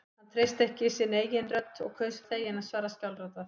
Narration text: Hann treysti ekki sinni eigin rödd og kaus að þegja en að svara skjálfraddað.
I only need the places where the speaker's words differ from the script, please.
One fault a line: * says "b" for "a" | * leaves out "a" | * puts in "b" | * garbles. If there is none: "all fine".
all fine